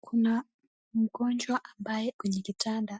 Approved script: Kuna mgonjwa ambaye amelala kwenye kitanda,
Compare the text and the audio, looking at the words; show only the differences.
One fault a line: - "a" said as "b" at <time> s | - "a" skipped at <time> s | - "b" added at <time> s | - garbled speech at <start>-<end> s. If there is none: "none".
- "amelala" skipped at 2.1 s